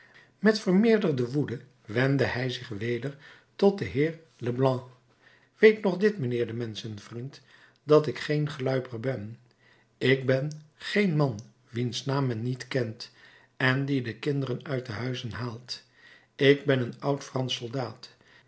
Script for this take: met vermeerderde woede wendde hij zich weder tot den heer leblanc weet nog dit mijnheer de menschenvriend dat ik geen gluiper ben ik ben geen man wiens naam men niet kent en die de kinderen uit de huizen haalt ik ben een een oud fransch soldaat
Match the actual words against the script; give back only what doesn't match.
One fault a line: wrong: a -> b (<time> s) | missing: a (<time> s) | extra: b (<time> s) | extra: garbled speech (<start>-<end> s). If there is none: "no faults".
missing: een (17.0 s)